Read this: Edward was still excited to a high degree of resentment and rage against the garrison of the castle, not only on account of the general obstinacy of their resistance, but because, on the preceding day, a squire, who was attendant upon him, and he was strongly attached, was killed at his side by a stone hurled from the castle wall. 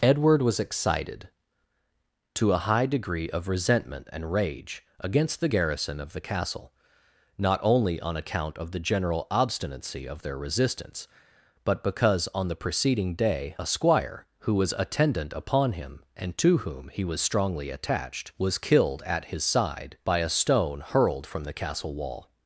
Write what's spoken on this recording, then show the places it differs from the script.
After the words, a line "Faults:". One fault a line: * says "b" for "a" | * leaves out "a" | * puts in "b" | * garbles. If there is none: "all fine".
Edward was excited to a high degree of resentment and rage against the garrison of the castle, not only on account of the general obstinacy of their resistance, but because, on the preceding day, a squire, who was attendant upon him, and to whom he was strongly attached, was killed at his side by a stone hurled from the castle wall.
Faults:
* leaves out "still"
* puts in "to whom"